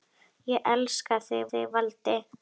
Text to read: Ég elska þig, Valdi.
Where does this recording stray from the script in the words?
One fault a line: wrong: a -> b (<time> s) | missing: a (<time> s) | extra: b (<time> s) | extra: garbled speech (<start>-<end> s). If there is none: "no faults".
extra: þig (1.5 s)